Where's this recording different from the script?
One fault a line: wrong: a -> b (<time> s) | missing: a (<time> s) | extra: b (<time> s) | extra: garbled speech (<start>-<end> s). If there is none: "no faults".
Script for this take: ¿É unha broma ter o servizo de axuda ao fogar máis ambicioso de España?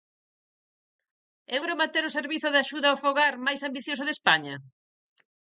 missing: unha (1.6 s)